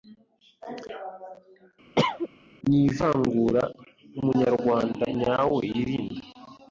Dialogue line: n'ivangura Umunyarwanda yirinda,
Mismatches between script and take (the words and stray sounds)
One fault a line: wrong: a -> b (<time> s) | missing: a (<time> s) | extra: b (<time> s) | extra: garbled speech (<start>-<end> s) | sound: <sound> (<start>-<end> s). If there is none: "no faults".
sound: cough (2.0-2.3 s)
extra: nyawe (5.2 s)